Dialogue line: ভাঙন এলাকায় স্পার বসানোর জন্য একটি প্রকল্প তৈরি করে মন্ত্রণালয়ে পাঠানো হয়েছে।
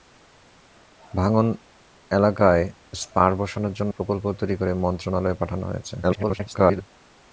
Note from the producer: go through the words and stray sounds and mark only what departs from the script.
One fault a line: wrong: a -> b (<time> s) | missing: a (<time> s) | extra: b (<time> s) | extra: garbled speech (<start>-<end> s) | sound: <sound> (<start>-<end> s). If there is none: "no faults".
missing: একটি (3.9 s)
extra: garbled speech (6.0-6.8 s)